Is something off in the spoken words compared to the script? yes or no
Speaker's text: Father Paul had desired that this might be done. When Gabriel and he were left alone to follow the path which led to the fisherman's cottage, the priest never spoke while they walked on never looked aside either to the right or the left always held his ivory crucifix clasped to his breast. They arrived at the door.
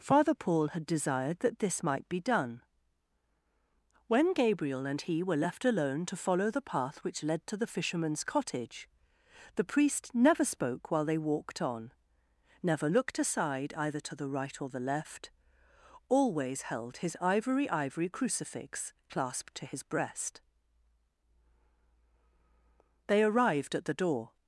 yes